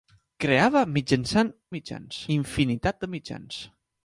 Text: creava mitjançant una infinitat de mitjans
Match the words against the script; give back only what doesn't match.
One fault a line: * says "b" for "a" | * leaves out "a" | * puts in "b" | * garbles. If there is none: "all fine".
* says "mitjans" for "una"